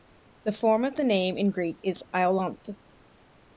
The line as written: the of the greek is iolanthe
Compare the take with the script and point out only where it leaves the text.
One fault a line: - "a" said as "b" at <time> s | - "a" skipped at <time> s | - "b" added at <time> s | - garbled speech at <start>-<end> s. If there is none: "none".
- "form" added at 0.5 s
- "name in" added at 1.0 s